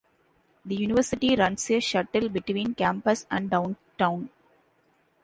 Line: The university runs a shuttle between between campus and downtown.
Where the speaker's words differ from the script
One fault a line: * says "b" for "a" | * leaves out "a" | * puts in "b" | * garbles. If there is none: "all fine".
* leaves out "between"